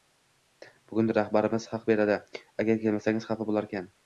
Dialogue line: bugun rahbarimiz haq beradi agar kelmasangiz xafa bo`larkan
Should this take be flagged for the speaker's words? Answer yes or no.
no